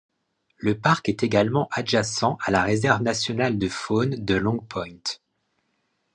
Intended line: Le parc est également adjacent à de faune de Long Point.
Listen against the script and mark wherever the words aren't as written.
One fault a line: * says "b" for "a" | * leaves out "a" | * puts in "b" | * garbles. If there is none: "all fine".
* puts in "la réserve nationale"